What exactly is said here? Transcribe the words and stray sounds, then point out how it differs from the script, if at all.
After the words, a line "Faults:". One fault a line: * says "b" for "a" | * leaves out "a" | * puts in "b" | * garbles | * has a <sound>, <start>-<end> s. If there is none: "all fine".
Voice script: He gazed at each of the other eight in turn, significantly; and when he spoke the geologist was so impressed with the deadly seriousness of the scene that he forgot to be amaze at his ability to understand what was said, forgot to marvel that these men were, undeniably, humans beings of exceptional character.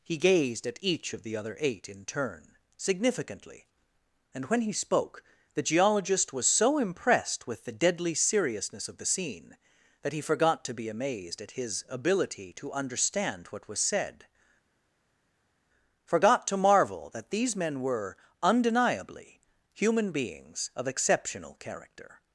He gazed at each of the other eight in turn, significantly; and when he spoke the geologist was so impressed with the deadly seriousness of the scene that he forgot to be amazed at his ability to understand what was said, forgot to marvel that these men were, undeniably, human beings of exceptional character.
Faults:
* says "amazed" for "amaze"
* says "human" for "humans"